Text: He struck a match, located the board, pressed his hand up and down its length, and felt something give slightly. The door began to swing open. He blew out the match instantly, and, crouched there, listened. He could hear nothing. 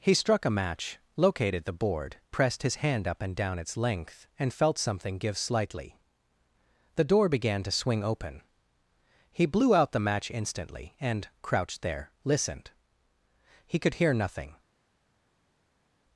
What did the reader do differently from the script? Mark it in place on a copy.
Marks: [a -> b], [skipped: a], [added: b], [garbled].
He struck a match, located the board, pressed his hand up and down its length, and felt something give slightly. The door began to swing open. He blew out the match instantly, and, crouched there, listened. He could hear nothing.